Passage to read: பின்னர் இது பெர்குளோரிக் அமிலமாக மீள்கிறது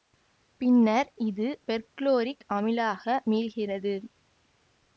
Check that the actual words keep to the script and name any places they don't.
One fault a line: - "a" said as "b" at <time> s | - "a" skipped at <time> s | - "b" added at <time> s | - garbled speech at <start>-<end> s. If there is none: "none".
none